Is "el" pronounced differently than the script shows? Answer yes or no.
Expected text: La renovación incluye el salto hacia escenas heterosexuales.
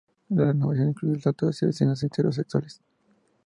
no